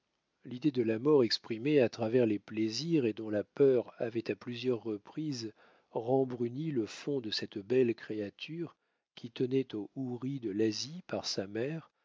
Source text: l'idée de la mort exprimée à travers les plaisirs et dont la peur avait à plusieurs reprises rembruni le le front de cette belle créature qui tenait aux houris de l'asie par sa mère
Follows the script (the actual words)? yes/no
no